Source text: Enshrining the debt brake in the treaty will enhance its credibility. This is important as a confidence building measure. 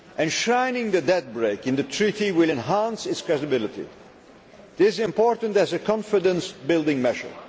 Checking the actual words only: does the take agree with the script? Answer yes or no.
yes